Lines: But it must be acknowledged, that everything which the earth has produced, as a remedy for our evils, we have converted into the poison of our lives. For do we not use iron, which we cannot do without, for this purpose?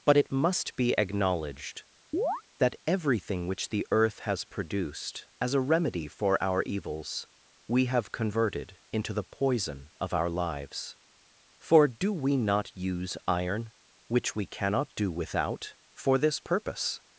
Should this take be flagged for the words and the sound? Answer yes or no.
yes